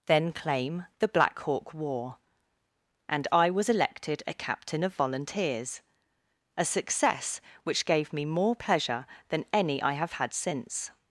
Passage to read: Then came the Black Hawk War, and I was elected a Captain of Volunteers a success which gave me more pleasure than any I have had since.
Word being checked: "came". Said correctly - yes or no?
no